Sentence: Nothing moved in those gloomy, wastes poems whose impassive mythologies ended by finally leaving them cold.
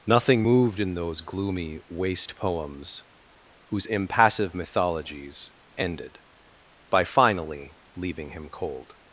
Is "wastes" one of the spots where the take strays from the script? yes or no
yes